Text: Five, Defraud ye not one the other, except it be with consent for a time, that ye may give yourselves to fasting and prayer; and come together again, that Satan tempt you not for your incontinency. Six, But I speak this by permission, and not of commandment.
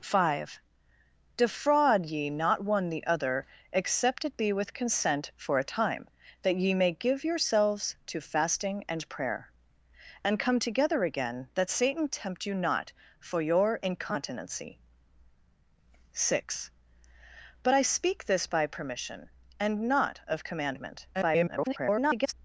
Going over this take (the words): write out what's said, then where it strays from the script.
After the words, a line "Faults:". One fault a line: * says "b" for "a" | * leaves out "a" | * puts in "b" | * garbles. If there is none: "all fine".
Five, Defraud ye not one the other, except it be with consent for a time, that ye may give yourselves to fasting and prayer; and come together again, that Satan tempt you not for your incontinency. Six, But I speak this by permission, and not of commandment. [garbled]
Faults:
* garbles